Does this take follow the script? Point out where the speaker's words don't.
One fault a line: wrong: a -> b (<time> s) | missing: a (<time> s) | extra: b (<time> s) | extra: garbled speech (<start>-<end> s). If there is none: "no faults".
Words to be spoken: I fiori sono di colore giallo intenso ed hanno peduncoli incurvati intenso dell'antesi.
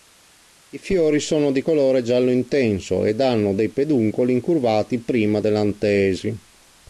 extra: dei (3.5 s)
wrong: intenso -> prima (5.0 s)